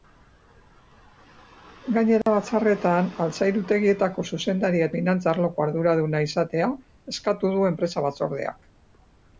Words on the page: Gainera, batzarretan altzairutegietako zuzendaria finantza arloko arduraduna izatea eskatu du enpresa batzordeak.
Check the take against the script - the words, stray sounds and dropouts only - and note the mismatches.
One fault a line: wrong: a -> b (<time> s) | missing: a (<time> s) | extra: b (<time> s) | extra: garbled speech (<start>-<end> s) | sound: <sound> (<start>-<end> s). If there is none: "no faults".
sound: dropout (2.2-2.3 s)